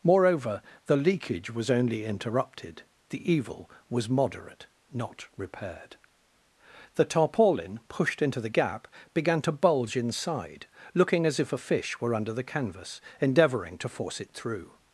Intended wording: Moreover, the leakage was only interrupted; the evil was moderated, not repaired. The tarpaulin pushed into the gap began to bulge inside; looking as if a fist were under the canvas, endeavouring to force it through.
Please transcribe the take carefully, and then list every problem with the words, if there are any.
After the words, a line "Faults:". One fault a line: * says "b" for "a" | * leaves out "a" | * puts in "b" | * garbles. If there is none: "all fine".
Moreover, the leakage was only interrupted; the evil was moderate, not repaired. The tarpaulin pushed into the gap began to bulge inside; looking as if a fish were under the canvas, endeavouring to force it through.
Faults:
* says "moderate" for "moderated"
* says "fish" for "fist"